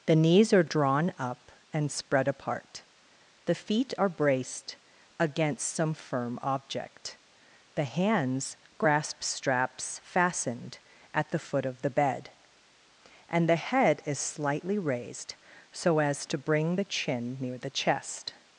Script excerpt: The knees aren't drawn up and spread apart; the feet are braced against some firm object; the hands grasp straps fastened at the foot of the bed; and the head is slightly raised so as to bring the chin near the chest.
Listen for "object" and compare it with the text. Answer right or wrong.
right